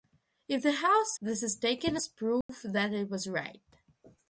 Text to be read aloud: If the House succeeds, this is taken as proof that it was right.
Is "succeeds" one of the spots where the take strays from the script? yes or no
yes